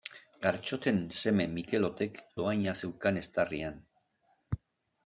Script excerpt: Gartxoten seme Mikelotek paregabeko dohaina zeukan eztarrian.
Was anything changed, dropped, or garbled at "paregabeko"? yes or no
yes